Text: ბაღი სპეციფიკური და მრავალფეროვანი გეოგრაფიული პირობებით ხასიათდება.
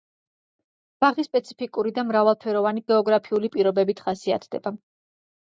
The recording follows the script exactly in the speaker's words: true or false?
true